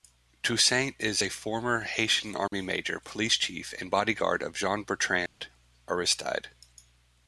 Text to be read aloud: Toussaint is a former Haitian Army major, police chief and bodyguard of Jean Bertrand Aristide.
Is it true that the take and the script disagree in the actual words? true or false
false